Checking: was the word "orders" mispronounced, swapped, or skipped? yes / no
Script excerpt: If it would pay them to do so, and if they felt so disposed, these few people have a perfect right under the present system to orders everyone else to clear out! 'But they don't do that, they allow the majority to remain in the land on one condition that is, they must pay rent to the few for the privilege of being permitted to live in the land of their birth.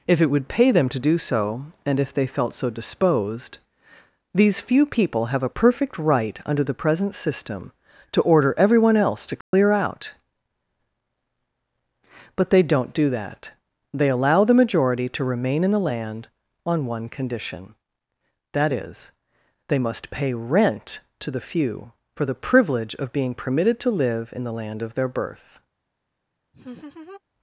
yes